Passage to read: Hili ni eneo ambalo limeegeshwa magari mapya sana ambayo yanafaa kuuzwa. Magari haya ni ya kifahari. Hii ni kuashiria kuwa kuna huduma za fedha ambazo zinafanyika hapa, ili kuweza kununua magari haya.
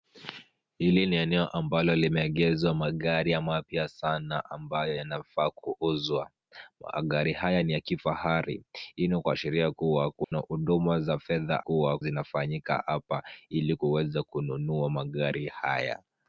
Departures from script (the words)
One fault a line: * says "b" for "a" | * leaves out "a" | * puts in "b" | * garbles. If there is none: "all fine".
* says "kuwa" for "ambazo"